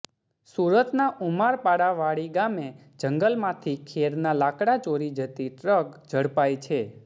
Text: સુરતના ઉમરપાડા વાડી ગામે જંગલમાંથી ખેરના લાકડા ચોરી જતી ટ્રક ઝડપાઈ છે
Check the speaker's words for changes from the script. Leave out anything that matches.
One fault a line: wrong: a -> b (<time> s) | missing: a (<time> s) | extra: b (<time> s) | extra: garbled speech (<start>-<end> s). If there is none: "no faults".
no faults